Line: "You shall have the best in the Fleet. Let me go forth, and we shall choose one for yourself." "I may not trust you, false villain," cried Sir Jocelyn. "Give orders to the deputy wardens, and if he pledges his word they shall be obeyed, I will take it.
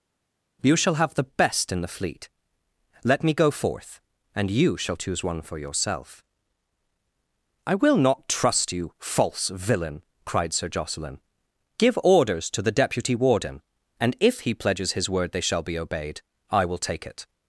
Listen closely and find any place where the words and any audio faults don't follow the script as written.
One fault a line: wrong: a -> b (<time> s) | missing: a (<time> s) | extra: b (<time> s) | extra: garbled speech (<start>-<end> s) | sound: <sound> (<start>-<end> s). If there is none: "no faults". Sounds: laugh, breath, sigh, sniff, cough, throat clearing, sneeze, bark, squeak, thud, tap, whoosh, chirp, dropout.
wrong: we -> you (4.5 s)
wrong: may -> will (7.7 s)
wrong: wardens -> warden (13.2 s)